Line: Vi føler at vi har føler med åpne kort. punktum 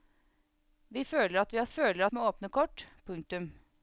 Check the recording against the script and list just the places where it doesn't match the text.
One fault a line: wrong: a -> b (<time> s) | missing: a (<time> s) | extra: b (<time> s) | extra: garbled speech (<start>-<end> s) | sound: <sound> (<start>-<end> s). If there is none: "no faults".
no faults